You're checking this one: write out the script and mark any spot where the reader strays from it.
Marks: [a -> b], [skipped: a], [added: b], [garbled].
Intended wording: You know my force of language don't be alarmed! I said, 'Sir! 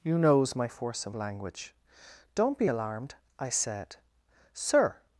You [know -> knows] my force of language don't be alarmed! I said, 'Sir!